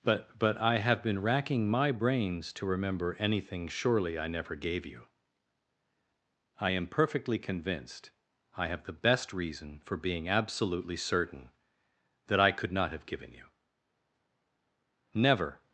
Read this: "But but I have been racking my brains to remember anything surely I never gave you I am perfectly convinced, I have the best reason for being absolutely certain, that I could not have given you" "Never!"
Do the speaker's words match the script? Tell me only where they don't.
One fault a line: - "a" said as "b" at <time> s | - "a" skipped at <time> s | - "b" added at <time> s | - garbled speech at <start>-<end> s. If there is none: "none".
none